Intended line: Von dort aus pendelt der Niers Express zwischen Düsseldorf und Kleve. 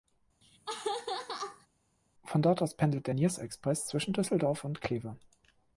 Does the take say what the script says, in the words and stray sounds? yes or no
no